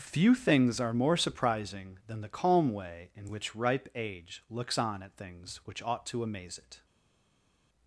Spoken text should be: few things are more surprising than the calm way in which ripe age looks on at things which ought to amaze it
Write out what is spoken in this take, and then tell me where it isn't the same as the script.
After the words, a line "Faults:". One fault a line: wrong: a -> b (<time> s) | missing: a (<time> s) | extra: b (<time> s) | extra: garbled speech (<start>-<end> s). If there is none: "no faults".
few things are more surprising than the calm way in which ripe age looks on at things which ought to amaze it
Faults:
no faults